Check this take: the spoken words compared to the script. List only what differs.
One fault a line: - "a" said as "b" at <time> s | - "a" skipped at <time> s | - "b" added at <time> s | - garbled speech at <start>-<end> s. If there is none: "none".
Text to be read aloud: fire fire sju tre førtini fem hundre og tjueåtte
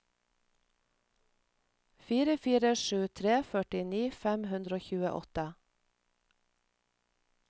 none